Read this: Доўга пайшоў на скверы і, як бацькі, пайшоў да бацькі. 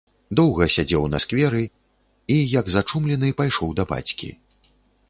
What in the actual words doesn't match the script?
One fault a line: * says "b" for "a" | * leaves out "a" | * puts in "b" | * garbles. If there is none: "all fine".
* says "сядзеў" for "пайшоў"
* says "зачумлены" for "бацькі"